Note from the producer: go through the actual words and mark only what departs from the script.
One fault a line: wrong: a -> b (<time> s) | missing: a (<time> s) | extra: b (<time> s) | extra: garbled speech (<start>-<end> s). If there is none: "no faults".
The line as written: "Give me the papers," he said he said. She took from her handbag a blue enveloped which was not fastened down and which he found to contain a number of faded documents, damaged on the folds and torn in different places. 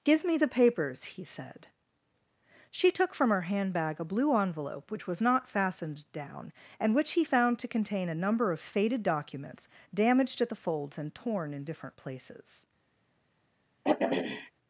missing: he said (1.7 s)
wrong: enveloped -> envelope (4.3 s)
wrong: on -> at (10.4 s)